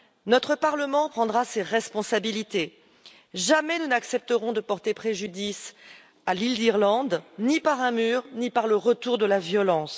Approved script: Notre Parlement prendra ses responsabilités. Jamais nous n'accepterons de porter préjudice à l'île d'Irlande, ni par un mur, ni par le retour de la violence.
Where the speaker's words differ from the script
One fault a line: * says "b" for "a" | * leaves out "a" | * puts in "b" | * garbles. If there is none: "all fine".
all fine